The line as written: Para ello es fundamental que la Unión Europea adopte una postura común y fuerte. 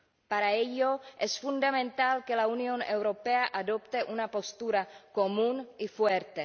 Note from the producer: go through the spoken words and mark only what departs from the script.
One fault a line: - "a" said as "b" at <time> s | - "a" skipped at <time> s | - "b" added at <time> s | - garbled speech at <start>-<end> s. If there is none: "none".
none